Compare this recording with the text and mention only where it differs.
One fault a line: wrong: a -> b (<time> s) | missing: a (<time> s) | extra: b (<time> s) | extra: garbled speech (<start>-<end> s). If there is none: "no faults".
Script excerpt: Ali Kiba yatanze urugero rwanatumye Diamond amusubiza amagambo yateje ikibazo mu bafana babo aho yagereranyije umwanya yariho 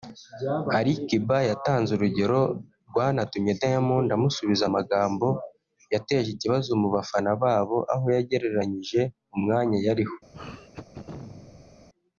no faults